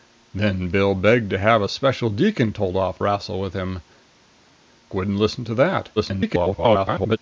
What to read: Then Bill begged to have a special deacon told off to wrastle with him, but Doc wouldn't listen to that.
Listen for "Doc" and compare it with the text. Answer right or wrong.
wrong